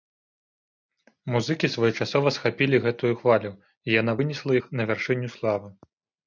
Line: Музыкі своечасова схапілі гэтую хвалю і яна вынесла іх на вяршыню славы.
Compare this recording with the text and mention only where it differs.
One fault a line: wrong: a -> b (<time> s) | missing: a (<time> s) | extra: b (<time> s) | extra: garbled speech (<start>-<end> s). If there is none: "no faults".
no faults